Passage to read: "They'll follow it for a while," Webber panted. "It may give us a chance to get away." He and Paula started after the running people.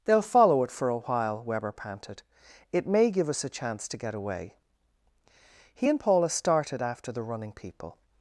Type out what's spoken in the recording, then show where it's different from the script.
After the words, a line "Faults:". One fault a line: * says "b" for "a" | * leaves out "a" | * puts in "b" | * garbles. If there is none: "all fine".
"They'll follow it for a while," Webber panted. "It may give us a chance to get away." He and Paula started after the running people.
Faults:
all fine